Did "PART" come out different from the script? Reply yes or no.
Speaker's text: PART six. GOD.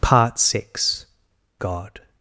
no